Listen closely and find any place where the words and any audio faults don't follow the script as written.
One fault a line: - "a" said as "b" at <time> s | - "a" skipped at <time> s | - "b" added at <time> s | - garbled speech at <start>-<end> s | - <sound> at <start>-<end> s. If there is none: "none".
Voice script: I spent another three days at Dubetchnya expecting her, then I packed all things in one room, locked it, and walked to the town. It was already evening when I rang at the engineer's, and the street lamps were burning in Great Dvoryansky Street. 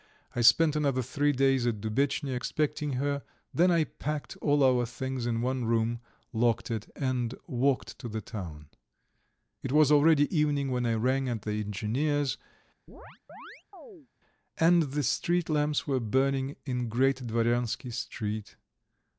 - "our" added at 4.6 s
- chirp at 12.9-14.1 s